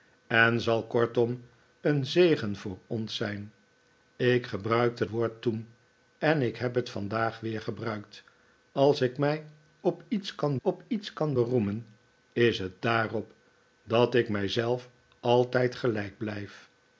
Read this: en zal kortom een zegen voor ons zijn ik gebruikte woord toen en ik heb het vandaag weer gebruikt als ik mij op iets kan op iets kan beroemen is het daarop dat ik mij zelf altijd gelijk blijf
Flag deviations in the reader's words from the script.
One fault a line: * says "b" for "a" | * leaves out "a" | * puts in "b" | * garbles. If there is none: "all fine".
all fine